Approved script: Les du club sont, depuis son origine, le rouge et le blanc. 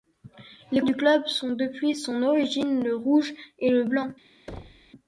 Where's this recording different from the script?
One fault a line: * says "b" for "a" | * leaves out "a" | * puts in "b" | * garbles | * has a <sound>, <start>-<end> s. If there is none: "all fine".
* has a thud, 4.5-4.9 s